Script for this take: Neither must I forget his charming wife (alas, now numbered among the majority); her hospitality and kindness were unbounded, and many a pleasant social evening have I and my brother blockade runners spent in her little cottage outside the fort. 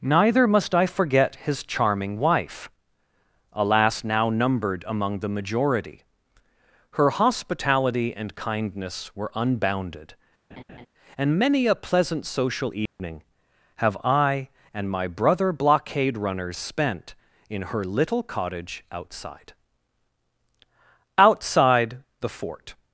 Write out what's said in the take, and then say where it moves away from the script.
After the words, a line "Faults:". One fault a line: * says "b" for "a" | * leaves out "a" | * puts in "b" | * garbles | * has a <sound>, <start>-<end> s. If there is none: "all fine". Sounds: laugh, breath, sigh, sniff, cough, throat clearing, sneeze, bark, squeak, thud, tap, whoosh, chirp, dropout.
Neither must I forget his charming wife (alas, now numbered among the majority); her hospitality and kindness were unbounded, and many a pleasant social evening have I and my brother blockade runners spent in her little cottage outside outside the fort.
Faults:
* has a laugh, 10.5-10.9 s
* has a dropout, 12.9-13.0 s
* puts in "outside"